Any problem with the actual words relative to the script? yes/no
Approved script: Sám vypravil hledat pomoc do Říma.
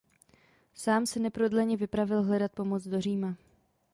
yes